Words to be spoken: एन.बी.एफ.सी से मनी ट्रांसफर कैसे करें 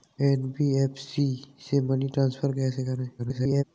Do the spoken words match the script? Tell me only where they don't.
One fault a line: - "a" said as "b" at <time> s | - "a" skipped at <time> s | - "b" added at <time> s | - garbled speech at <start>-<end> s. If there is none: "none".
- garbled speech at 3.2-3.6 s